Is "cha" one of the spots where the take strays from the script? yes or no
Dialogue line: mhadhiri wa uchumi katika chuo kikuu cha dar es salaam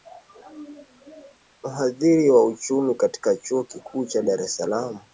no